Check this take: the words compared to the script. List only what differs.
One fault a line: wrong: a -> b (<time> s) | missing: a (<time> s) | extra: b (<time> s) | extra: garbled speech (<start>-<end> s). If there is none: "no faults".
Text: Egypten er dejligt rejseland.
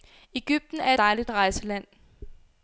no faults